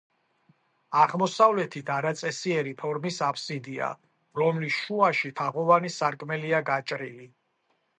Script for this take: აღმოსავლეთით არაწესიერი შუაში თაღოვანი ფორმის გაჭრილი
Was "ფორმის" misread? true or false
true